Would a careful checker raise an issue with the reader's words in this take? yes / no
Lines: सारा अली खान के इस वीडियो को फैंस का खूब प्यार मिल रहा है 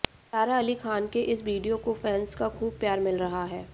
no